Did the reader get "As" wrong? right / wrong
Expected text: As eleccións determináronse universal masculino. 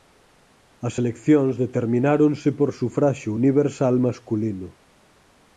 right